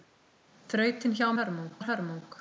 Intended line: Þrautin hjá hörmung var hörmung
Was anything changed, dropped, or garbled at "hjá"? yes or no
no